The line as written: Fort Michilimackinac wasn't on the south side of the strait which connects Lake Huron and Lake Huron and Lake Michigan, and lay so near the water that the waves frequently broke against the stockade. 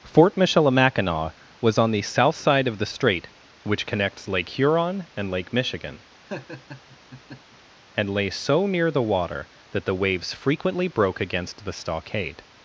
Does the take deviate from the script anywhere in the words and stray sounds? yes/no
yes